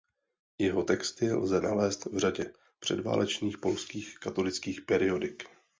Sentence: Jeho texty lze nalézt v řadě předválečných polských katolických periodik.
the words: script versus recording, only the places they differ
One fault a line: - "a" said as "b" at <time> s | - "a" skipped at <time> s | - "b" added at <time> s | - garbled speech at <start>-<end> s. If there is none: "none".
none